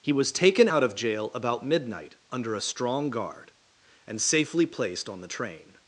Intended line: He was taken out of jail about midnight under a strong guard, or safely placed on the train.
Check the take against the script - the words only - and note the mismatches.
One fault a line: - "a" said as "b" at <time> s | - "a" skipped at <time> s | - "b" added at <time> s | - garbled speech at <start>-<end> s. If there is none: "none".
- "or" said as "and" at 4.1 s